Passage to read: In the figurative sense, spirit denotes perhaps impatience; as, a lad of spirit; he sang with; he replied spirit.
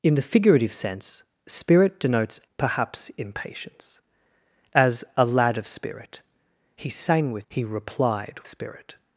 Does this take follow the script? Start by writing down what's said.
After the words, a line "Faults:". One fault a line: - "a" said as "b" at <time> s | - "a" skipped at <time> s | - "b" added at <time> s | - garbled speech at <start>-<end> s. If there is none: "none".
In the figurative sense, spirit denotes perhaps impatience; as, a lad of spirit; he sang with; he replied spirit.
Faults:
none